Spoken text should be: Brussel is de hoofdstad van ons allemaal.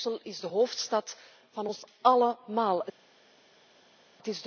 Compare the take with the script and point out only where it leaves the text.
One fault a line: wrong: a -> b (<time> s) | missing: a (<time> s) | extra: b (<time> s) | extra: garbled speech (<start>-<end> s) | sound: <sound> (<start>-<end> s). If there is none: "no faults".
no faults